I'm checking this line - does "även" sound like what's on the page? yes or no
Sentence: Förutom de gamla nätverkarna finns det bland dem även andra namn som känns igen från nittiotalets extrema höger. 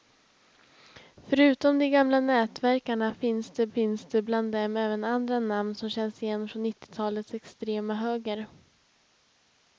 yes